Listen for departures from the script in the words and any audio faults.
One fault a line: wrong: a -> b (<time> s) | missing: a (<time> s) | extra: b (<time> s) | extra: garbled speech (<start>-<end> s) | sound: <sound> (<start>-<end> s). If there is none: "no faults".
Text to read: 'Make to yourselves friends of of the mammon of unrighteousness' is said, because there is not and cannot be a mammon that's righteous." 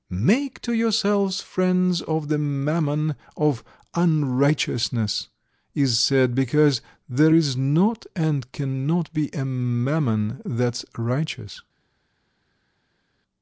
missing: of (2.3 s)